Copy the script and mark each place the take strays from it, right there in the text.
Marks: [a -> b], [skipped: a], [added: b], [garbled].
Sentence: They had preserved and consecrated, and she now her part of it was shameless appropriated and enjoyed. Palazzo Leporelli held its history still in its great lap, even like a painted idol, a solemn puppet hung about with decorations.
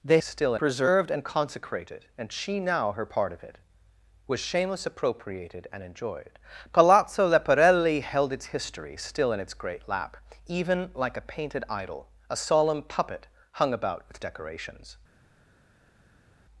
They [had -> still] preserved and consecrated, and she now her part of it was shameless appropriated and enjoyed. Palazzo Leporelli held its history still in its great lap, even like a painted idol, a solemn puppet hung about with decorations.